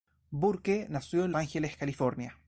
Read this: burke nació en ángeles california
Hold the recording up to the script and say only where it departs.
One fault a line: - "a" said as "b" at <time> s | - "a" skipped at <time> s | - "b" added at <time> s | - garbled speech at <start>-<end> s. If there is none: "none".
none